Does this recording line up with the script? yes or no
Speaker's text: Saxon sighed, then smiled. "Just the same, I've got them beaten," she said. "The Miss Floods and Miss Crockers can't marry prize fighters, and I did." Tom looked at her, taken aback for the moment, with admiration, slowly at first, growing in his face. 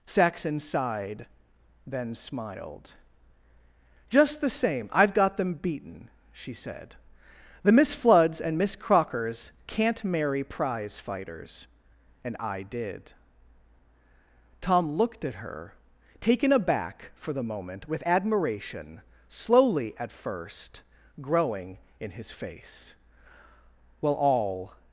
no